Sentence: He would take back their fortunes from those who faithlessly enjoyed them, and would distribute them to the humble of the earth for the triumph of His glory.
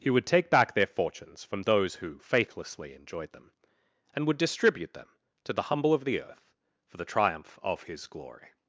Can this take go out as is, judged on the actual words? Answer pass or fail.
pass